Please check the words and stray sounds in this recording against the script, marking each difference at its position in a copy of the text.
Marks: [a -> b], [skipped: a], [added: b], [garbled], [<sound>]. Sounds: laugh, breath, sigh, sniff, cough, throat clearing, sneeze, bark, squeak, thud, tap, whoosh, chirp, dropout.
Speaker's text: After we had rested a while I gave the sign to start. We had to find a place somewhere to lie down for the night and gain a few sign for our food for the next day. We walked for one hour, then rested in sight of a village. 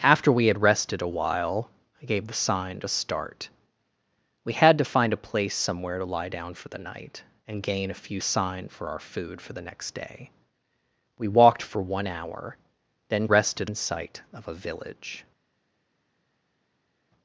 After we had rested a while I gave the sign to start. We had to find a place somewhere to lie down for the night and gain a few sign for our food for the next day. We walked for one hour, then rested in sight of a village.